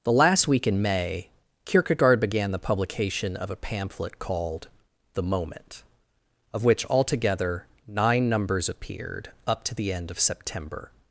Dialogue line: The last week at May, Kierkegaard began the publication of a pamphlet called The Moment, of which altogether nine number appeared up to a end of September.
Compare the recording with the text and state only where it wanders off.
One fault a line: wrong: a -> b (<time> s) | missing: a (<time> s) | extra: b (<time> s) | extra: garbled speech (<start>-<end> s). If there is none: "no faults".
wrong: at -> in (0.7 s)
wrong: number -> numbers (8.3 s)
wrong: a -> the (9.7 s)